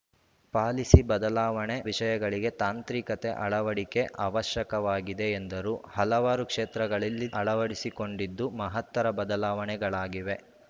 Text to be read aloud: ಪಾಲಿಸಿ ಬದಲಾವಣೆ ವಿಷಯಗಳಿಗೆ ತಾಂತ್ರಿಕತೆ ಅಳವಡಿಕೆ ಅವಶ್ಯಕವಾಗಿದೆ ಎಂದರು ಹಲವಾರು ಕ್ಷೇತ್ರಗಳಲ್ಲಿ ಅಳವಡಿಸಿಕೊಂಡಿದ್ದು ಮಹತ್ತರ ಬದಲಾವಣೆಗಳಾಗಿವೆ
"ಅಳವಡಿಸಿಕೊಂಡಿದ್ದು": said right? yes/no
yes